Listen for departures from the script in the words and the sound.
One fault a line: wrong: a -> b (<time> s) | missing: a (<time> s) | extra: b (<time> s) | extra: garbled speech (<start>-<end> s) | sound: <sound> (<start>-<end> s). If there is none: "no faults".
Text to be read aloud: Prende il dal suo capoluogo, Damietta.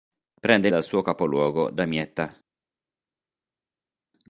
no faults